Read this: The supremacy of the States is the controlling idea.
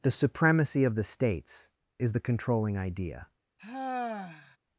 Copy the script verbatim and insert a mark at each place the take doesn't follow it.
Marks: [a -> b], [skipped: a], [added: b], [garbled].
The supremacy of the States is the controlling idea.